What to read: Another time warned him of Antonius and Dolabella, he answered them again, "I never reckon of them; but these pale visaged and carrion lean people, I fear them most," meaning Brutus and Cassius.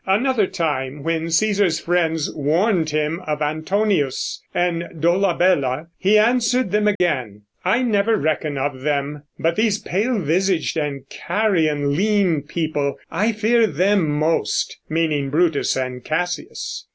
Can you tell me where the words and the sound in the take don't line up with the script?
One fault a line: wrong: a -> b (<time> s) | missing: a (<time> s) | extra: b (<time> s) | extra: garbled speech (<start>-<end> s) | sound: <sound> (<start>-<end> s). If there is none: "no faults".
extra: when Cæsar's friends (1.0 s)
sound: dropout (7.0-7.0 s)